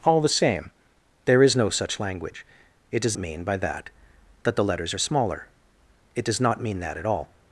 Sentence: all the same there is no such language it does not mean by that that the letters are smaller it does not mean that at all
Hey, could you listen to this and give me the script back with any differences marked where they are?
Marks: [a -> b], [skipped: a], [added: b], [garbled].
all the same there is no such language it does [skipped: not] mean by that that the letters are smaller it does not mean that at all